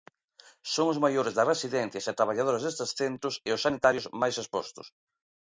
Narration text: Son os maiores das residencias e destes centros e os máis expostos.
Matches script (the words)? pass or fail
fail